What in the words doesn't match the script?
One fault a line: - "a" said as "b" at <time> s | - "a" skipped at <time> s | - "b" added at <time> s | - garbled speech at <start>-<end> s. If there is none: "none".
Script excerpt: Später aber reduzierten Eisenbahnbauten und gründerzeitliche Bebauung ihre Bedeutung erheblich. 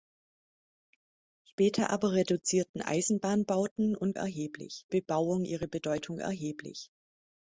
- "gründerzeitliche" said as "erheblich" at 4.1 s